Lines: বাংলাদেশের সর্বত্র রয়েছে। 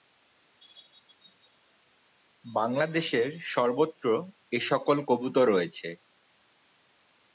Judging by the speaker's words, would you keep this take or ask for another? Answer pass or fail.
fail